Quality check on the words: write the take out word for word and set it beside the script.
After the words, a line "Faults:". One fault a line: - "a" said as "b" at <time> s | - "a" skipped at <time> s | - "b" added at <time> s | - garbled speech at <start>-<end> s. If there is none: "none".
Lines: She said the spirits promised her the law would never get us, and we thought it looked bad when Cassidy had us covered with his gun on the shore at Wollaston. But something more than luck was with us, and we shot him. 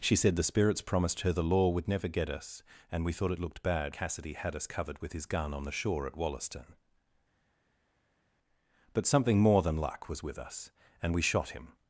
She said the spirits promised her the law would never get us, and we thought it looked bad Cassidy had us covered with his gun on the shore at Wollaston. But something more than luck was with us, and we shot him.
Faults:
- "when" skipped at 4.0 s